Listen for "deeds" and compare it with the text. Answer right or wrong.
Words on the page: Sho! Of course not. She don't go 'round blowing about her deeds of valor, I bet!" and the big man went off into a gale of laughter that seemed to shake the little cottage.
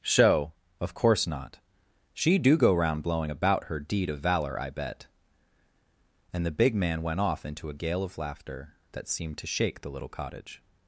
wrong